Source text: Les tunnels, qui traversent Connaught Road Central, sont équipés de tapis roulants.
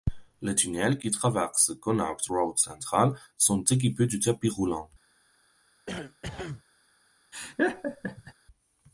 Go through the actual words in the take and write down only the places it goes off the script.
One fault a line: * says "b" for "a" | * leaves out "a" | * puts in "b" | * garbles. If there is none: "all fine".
all fine